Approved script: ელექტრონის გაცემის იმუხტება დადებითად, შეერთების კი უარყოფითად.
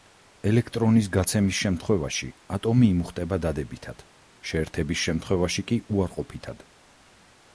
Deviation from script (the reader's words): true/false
true